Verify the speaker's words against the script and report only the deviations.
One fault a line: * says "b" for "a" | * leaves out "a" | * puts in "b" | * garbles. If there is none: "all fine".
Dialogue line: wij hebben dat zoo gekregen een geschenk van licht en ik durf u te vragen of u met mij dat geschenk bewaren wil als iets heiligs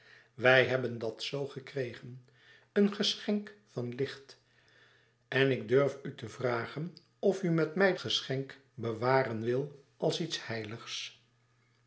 * leaves out "dat"